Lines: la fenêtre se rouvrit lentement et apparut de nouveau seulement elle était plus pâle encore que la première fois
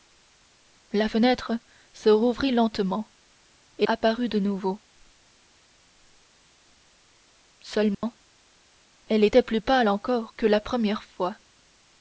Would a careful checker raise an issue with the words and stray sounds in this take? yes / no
yes